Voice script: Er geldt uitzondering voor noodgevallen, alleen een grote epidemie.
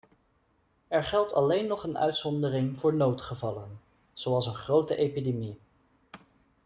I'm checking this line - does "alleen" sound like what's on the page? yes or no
no